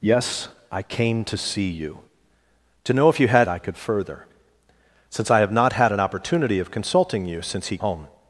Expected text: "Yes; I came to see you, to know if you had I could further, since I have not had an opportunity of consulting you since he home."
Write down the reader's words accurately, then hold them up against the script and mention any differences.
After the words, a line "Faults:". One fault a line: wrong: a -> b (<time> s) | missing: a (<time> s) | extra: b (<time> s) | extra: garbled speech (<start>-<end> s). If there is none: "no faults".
"Yes; I came to see you, to know if you had I could further, since I have not had an opportunity of consulting you since he home."
Faults:
no faults